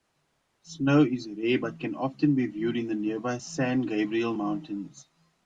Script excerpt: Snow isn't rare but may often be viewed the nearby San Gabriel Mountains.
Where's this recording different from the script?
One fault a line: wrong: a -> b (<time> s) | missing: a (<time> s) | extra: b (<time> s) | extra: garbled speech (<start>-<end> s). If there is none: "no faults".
wrong: isn't -> is (1.0 s)
wrong: may -> can (1.8 s)
extra: in (2.8 s)